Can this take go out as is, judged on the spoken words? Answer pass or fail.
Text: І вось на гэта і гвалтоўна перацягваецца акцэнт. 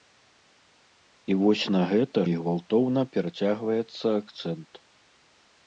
pass